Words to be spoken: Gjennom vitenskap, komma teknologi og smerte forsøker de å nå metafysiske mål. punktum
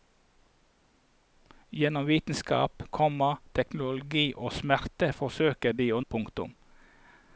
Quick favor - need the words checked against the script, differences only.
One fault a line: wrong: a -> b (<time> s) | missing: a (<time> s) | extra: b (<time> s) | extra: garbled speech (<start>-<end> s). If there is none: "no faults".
missing: nå metafysiske mål (6.0 s)